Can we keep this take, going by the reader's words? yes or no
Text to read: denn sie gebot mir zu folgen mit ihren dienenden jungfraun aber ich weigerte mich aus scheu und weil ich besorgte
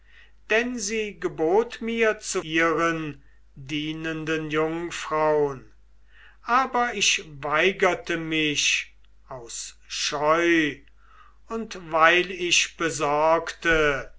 no